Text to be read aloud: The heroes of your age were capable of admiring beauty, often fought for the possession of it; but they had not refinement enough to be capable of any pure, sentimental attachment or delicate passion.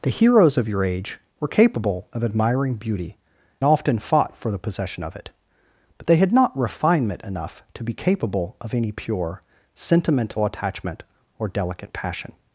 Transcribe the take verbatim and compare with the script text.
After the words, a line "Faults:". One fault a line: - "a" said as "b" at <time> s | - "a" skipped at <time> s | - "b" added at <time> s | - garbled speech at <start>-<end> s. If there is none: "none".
The heroes of your age were capable of admiring beauty, often fought for the possession of it; but they had not refinement enough to be capable of any pure, sentimental attachment or delicate passion.
Faults:
none